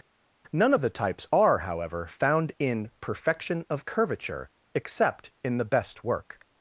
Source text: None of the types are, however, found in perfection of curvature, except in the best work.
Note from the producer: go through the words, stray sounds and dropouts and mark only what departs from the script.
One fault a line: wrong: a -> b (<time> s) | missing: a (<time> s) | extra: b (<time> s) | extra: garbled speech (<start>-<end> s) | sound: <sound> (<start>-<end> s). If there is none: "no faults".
no faults